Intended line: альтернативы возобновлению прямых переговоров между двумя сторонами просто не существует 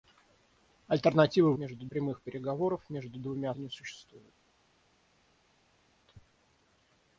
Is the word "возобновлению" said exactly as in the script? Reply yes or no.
no